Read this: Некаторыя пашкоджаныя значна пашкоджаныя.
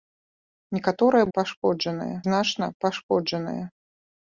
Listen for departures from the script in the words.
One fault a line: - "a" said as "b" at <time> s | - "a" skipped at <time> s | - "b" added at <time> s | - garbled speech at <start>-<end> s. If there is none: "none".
none